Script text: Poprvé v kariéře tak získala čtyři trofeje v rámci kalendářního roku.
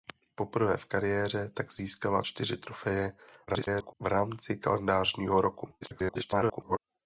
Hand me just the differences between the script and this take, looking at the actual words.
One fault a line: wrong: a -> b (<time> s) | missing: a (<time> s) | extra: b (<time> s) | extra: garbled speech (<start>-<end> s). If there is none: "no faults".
extra: garbled speech (3.5-3.9 s)
extra: garbled speech (5.8-6.8 s)